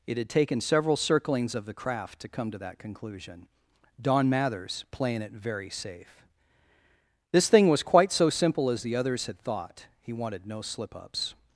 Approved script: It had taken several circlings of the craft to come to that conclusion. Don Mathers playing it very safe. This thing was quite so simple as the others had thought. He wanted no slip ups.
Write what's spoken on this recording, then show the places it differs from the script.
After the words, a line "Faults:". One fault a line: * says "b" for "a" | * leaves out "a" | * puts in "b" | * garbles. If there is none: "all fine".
It had taken several circlings of the craft to come to that conclusion. Don Mathers playing it very safe. This thing was quite so simple as the others had thought. He wanted no slip ups.
Faults:
all fine